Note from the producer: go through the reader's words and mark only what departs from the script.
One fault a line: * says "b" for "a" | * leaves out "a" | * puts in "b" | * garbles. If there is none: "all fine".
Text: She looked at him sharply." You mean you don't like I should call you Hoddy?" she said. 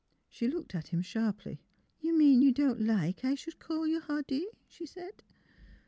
all fine